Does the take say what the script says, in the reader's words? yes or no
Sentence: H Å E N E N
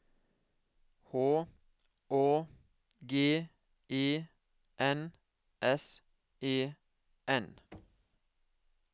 no